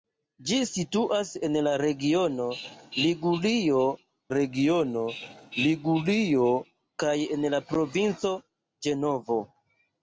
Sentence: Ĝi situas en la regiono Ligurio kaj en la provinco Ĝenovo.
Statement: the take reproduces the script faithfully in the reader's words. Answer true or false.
false